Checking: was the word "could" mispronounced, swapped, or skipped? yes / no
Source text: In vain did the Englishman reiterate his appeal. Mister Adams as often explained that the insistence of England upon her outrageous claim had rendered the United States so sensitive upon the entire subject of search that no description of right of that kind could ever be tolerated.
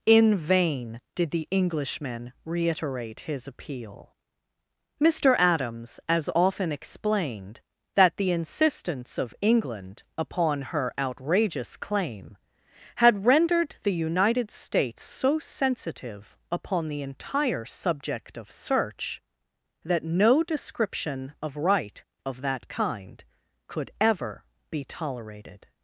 no